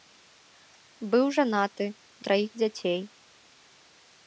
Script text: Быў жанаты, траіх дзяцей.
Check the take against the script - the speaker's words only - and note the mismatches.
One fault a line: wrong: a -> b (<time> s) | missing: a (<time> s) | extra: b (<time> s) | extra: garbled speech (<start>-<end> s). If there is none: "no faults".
no faults